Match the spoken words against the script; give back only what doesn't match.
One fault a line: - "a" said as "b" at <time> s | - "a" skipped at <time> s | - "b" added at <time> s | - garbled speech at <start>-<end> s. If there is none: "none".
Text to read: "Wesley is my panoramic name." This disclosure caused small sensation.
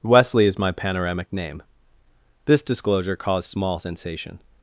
none